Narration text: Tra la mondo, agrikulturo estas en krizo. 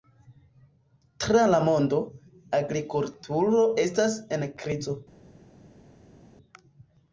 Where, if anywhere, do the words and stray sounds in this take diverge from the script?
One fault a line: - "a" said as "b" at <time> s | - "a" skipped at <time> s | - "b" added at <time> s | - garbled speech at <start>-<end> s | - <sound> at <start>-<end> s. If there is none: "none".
none